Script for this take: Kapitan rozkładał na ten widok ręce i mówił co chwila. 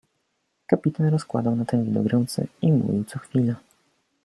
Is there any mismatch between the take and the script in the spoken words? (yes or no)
no